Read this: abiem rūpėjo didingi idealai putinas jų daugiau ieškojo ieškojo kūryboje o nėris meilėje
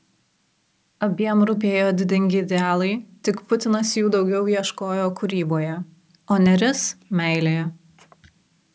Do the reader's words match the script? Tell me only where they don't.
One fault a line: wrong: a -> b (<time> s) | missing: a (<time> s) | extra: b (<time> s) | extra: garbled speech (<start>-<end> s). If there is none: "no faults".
extra: tik (3.3 s)
missing: ieškojo (5.0 s)